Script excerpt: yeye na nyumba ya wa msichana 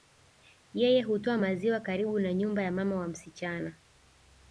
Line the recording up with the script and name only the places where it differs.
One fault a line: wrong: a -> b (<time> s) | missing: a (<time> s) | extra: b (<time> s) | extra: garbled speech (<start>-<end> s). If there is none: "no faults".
extra: hutoa maziwa karibu (1.0 s)
extra: mama (2.7 s)